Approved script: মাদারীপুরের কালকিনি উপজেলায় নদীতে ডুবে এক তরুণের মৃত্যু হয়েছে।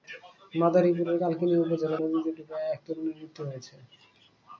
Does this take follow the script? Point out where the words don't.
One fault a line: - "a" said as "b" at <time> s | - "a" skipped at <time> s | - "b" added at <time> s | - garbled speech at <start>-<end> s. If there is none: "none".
none